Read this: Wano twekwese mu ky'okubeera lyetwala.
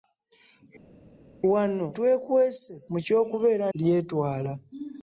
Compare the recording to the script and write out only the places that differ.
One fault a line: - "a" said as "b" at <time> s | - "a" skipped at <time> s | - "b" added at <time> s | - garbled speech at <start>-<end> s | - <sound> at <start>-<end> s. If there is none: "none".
none